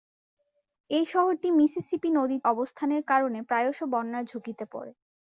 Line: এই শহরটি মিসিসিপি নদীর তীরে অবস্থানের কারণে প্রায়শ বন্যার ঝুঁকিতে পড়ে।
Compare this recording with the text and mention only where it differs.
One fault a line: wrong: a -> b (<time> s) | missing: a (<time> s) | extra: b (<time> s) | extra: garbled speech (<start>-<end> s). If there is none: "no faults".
missing: তীরে (2.4 s)